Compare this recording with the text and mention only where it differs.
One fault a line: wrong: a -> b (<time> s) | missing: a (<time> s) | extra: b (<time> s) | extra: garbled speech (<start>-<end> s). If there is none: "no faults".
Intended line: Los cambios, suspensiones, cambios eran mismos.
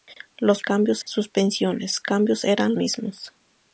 no faults